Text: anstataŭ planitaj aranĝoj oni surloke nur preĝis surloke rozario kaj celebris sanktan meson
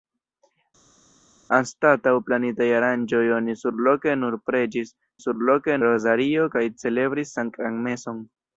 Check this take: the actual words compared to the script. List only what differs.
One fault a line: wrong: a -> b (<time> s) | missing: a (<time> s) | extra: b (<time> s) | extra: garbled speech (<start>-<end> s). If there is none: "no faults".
no faults